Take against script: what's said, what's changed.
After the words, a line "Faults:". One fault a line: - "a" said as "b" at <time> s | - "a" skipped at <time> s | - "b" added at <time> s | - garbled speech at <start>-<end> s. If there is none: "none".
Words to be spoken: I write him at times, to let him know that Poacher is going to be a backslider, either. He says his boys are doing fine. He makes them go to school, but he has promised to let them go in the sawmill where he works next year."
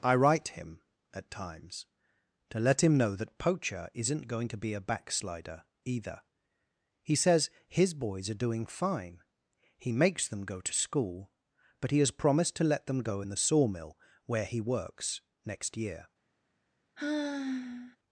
I write him at times, to let him know that Poacher isn't going to be a backslider, either. He says his boys are doing fine. He makes them go to school, but he has promised to let them go in the sawmill where he works next year."
Faults:
- "is" said as "isn't" at 3.9 s